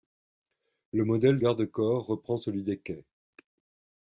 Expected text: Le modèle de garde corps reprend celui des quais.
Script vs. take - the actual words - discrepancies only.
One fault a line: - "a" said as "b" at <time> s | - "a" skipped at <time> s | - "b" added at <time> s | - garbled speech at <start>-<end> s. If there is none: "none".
- "de" skipped at 1.4 s